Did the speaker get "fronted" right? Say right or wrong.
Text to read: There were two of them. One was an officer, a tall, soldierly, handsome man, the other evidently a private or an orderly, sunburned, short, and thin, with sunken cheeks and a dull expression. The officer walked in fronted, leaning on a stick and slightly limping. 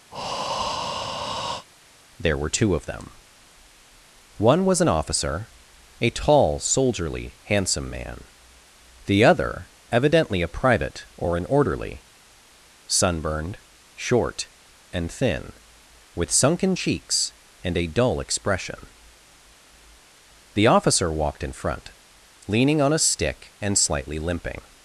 wrong